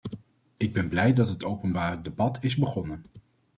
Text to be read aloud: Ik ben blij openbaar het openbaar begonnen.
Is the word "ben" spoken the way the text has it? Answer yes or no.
yes